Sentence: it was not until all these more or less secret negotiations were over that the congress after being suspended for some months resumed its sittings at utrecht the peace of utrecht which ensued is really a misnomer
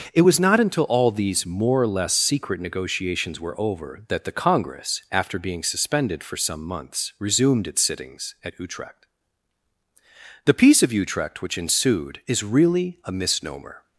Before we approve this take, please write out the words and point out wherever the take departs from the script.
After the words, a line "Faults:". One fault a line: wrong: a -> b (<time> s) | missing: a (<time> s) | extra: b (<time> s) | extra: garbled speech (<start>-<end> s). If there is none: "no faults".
it was not until all these more or less secret negotiations were over that the congress after being suspended for some months resumed its sittings at utrecht the peace of utrecht which ensued is really a misnomer
Faults:
no faults